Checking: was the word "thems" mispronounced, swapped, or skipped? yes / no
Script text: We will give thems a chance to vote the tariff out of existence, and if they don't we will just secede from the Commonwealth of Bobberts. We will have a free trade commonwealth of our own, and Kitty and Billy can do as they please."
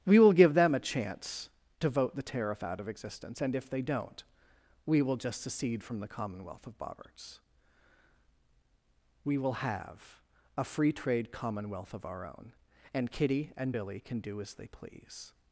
yes